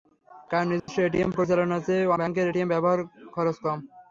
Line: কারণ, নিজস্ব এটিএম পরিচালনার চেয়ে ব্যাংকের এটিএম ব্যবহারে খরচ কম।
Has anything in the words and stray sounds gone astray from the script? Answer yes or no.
yes